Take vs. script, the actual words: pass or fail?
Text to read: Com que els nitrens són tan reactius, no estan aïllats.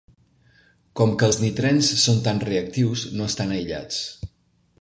pass